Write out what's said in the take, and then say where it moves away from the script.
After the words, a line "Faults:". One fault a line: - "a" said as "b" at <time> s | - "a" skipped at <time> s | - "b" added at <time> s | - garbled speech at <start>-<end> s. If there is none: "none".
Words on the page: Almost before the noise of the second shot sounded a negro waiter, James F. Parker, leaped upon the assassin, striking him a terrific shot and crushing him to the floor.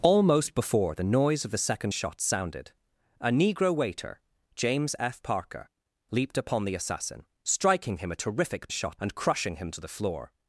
Almost before the noise of the second shot sounded a negro waiter, James F. Parker, leaped upon the assassin, striking him a terrific shot and crushing him to the floor.
Faults:
none